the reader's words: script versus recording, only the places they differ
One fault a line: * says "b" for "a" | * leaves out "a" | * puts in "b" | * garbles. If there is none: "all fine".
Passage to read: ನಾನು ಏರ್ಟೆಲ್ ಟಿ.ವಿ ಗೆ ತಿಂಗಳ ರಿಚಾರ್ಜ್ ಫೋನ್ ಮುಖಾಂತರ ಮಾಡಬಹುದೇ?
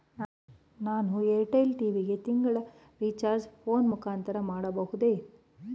all fine